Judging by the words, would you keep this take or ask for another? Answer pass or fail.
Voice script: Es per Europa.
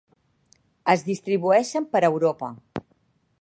fail